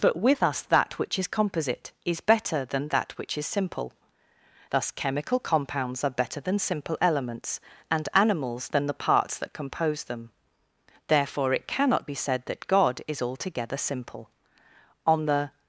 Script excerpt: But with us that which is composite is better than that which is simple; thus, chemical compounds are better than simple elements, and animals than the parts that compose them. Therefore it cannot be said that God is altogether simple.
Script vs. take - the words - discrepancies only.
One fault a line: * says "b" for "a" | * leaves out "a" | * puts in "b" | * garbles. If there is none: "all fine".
* puts in "On the"